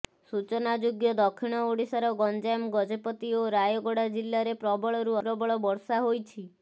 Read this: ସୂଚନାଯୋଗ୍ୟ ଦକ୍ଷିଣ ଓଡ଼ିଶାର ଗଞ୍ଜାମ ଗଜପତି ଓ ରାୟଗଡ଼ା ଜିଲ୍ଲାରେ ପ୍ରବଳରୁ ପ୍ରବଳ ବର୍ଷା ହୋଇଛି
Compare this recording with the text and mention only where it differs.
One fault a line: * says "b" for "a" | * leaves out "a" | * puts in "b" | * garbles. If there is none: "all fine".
all fine